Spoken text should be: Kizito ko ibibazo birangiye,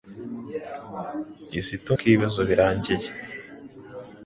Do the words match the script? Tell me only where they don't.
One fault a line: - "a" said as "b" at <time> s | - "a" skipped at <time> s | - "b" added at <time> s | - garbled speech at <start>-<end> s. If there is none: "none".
none